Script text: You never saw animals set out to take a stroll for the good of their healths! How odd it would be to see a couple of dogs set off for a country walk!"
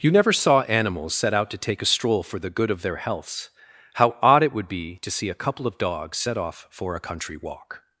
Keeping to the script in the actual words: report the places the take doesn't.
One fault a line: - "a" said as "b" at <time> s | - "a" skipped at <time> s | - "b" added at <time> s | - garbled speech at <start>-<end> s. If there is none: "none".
none